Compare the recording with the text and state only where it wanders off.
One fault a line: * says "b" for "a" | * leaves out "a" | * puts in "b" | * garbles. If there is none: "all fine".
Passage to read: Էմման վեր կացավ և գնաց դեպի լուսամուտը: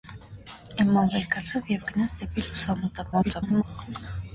* garbles